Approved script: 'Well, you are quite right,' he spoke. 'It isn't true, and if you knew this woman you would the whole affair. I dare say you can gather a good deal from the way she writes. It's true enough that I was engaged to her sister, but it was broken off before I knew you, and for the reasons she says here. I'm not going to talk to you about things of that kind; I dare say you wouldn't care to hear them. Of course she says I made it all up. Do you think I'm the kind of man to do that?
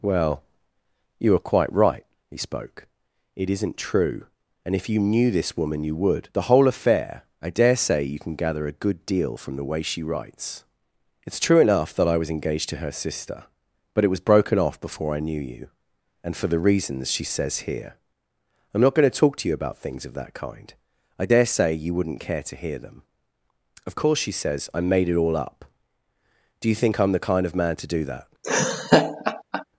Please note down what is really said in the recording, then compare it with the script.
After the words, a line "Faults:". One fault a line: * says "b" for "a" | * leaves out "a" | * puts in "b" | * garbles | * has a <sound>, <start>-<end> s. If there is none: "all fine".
'Well, you are quite right,' he spoke. 'It isn't true, and if you knew this woman you would the whole affair. I dare say you can gather a good deal from the way she writes. It's true enough that I was engaged to her sister, but it was broken off before I knew you, and for the reasons she says here. I'm not going to talk to you about things of that kind; I dare say you wouldn't care to hear them. Of course she says I made it all up. Do you think I'm the kind of man to do that?
Faults:
* has a laugh, 28.4-29.6 s